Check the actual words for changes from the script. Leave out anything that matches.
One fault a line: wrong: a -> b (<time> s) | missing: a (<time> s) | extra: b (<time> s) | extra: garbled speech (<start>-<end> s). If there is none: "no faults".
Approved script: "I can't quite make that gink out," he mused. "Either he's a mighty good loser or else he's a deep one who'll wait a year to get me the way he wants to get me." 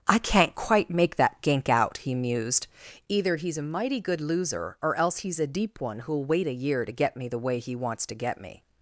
no faults